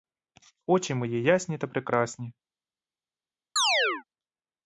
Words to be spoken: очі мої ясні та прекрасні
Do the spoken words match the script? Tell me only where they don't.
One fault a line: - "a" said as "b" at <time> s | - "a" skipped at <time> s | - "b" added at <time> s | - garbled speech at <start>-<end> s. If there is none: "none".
none